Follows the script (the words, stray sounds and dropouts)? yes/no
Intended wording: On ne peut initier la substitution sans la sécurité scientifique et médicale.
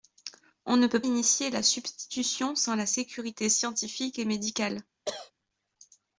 no